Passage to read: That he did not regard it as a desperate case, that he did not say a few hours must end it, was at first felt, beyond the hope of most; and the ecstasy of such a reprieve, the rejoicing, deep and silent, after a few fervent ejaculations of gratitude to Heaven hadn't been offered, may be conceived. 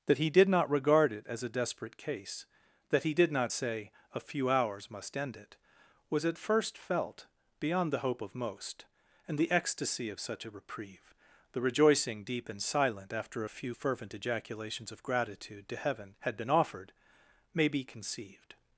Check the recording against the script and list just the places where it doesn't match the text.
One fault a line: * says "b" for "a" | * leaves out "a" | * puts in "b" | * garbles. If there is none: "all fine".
* says "had" for "hadn't"